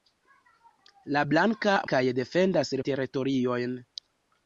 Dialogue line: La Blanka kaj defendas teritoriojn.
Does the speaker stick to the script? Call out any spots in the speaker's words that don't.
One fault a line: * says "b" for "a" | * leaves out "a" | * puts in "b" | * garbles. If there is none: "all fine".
all fine